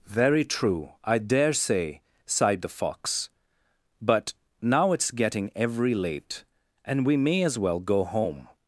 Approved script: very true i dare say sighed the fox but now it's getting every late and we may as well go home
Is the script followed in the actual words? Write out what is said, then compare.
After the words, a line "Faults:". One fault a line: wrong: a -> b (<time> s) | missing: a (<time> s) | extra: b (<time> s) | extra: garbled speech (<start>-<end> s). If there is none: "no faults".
very true i dare say sighed the fox but now it's getting every late and we may as well go home
Faults:
no faults